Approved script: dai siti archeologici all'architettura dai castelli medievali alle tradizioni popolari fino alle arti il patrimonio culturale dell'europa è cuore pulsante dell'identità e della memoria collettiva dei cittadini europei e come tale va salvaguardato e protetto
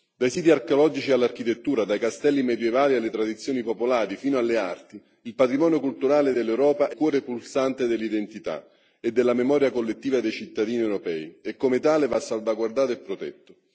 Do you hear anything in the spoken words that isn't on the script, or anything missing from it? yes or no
no